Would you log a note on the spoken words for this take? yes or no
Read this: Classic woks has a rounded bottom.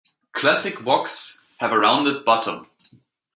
yes